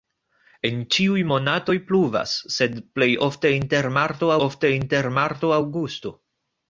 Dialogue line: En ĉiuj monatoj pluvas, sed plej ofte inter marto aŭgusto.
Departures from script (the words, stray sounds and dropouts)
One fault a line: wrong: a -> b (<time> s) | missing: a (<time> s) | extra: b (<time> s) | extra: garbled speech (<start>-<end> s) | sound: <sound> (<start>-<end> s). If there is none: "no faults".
extra: ofte inter marto (4.5 s)